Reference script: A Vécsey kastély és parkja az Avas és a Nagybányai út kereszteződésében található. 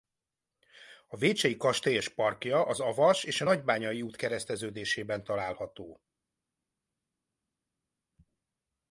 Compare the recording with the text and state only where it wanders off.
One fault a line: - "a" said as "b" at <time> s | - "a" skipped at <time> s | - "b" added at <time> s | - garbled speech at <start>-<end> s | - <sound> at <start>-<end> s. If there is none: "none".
none